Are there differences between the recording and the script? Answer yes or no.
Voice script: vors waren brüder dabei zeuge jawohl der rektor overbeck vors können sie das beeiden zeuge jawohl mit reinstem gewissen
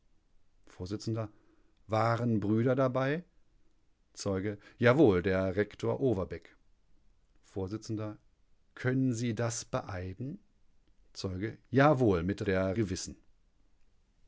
yes